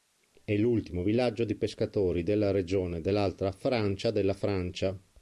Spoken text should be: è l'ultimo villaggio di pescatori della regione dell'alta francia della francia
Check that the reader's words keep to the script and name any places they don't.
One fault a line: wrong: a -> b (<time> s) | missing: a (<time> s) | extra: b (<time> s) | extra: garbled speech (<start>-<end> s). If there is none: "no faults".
no faults